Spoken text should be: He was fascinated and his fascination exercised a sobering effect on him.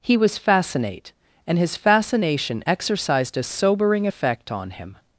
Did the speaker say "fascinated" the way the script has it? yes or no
no